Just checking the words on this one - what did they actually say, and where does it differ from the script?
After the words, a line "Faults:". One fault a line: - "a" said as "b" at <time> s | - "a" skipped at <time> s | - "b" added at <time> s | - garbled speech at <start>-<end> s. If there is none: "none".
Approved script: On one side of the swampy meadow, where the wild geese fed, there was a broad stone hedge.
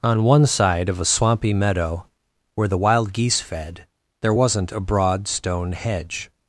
On one side of a swampy meadow, where the wild geese fed, there wasn't a broad stone hedge.
Faults:
- "the" said as "a" at 1.0 s
- "was" said as "wasn't" at 4.3 s